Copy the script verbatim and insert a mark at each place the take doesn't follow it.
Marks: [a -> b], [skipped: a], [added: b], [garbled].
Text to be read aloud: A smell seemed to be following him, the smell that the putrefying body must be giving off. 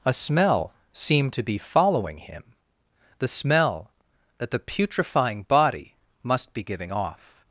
A smell seemed to be following him, the smell that the putrefying body must be giving off.